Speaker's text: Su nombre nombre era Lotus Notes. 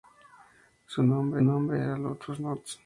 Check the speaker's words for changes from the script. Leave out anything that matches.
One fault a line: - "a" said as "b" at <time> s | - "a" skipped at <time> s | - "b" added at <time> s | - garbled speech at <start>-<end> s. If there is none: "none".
none